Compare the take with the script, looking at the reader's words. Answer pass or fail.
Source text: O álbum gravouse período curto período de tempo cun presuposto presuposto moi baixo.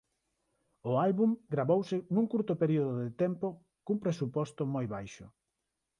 fail